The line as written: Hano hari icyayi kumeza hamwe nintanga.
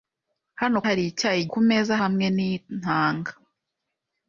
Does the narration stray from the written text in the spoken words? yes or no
no